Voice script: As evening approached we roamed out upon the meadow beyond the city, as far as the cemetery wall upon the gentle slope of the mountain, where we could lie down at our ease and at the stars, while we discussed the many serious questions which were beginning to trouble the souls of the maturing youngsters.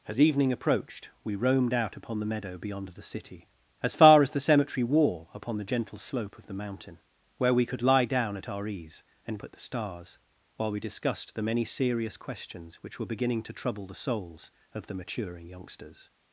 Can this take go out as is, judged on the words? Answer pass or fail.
pass